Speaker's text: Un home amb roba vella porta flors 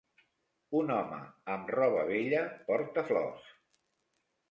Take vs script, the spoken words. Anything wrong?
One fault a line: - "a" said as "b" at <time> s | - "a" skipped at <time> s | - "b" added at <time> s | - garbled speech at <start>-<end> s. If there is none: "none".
none